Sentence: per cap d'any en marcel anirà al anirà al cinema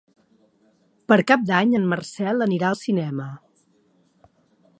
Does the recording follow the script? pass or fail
fail